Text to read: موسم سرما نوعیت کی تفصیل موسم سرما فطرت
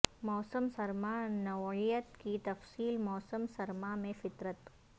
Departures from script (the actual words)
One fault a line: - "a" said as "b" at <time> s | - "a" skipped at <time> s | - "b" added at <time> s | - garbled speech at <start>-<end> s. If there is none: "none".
- "میں" added at 4.0 s